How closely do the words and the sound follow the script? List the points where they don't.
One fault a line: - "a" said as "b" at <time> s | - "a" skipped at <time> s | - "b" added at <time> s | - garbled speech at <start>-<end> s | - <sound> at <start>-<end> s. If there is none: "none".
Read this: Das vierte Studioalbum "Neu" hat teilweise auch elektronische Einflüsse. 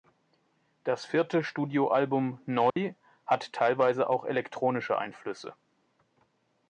- dropout at 2.7-2.8 s